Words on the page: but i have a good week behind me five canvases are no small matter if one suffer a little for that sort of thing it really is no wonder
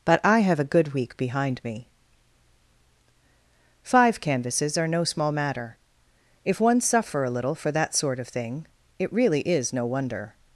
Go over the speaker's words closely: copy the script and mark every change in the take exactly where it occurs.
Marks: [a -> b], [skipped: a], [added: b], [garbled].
but i have a good week behind me five canvases are no small matter if one suffer a little for that sort of thing it really is no wonder